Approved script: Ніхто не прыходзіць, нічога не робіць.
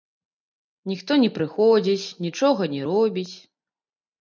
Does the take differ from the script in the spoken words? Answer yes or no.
no